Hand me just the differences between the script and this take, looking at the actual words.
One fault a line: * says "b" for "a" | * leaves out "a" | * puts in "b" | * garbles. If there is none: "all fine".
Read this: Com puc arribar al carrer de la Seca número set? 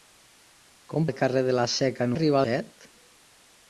* leaves out "puc arribar"
* says "arribar" for "número"